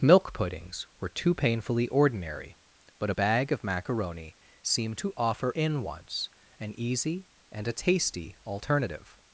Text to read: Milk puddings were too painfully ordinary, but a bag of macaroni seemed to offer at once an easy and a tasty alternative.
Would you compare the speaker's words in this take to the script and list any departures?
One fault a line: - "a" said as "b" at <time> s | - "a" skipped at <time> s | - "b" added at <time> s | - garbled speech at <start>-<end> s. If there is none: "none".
- "at" said as "in" at 5.5 s